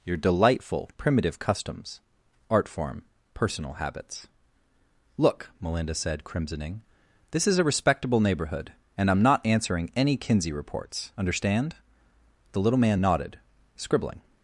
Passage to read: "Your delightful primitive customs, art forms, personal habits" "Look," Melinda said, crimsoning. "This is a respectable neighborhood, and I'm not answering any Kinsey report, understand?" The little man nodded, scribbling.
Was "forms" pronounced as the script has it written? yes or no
no